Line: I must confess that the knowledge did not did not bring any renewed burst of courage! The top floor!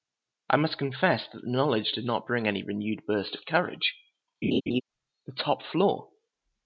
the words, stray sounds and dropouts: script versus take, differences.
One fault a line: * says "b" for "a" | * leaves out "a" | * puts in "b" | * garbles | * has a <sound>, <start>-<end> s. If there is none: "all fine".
* leaves out "did not"
* has a laugh, 4.4-4.8 s